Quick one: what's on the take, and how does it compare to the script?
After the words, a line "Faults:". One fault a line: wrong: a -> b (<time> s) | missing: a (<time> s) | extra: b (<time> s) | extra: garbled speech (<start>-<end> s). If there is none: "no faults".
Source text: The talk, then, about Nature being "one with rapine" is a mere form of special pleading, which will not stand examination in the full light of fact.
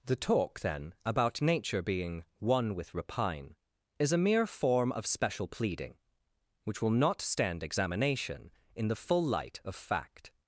The talk, then, about Nature being "one with rapine" is a mere form of special pleading, which will not stand examination in the full light of fact.
Faults:
no faults